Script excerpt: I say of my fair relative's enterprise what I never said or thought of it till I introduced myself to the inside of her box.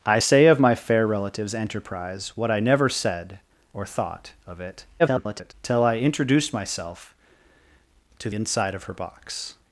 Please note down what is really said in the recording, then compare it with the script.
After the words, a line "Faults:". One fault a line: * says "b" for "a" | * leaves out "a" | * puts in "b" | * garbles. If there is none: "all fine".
I say of my fair relative's enterprise what I never said or thought of it [garbled] till I introduced myself to inside of her box.
Faults:
* garbles
* leaves out "the"